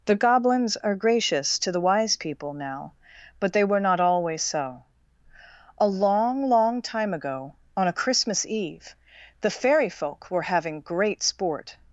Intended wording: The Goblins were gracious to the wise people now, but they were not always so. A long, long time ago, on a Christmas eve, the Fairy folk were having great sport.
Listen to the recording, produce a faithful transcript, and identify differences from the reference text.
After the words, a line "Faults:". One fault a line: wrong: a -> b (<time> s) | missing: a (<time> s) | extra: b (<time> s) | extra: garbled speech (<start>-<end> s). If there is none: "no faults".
The Goblins are gracious to the wise people now, but they were not always so. A long, long time ago, on a Christmas eve, the Fairy folk were having great sport.
Faults:
wrong: were -> are (0.8 s)